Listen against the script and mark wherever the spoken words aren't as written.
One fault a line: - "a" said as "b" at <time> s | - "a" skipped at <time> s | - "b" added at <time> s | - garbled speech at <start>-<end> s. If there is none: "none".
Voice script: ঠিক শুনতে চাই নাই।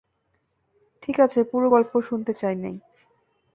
- "আছে পুরো গল্প" added at 1.2 s